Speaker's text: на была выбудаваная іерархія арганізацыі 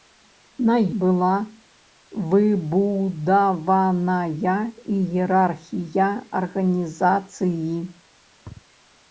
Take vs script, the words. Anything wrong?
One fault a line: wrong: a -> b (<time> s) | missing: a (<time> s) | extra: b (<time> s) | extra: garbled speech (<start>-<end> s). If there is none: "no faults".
no faults